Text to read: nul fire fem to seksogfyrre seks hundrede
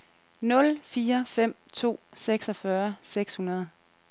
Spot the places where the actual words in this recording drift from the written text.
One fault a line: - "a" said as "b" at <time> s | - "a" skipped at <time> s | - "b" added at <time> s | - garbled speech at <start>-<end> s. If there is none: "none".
none